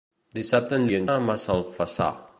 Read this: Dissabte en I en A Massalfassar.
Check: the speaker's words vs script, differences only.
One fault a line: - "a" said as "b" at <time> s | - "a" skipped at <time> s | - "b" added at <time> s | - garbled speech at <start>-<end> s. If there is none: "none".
none